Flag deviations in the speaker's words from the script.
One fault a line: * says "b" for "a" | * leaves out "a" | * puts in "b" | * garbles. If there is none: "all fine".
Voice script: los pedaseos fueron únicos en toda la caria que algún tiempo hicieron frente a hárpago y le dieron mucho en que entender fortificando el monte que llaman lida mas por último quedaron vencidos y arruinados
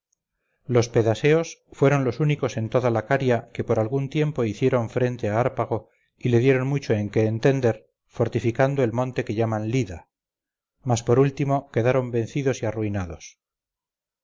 * puts in "los"
* puts in "por"